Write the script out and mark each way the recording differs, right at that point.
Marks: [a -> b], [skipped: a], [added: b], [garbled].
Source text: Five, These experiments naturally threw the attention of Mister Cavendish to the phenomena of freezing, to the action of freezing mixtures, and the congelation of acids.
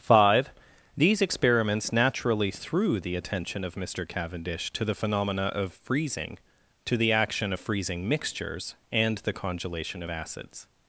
Five, These experiments naturally threw the attention of Mister Cavendish to the phenomena of freezing, to the action of freezing mixtures, and the congelation of acids.